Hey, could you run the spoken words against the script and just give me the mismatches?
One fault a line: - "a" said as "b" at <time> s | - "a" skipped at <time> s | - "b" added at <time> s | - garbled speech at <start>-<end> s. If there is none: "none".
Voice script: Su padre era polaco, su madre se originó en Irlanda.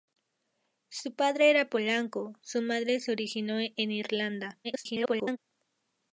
- garbled speech at 4.6-5.4 s